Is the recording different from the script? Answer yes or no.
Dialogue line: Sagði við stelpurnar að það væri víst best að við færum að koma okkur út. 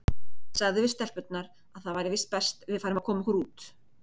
no